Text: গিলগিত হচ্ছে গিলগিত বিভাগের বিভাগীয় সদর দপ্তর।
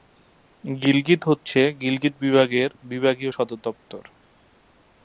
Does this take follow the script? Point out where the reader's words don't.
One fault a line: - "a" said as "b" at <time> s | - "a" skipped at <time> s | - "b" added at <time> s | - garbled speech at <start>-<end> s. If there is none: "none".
none